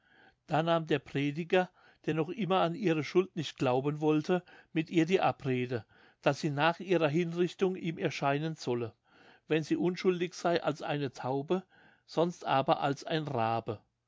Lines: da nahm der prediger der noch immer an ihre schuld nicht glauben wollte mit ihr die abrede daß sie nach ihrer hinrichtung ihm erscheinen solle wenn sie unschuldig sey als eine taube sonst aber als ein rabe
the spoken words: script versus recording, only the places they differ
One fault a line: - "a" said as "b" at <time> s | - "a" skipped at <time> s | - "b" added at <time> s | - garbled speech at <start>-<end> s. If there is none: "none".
none